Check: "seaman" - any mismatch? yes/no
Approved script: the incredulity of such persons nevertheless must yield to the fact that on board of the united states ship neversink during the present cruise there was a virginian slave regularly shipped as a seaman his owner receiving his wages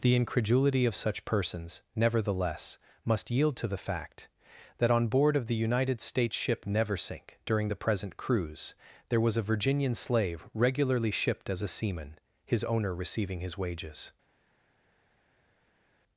no